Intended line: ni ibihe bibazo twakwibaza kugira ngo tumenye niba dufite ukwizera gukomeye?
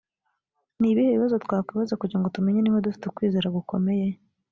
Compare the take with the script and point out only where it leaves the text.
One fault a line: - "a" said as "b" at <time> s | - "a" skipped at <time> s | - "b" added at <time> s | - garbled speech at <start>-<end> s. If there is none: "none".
none